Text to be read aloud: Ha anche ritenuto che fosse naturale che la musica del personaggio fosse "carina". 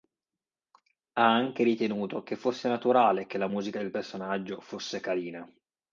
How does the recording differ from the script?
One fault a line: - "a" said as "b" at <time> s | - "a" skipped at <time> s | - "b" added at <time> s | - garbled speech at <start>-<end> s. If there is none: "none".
none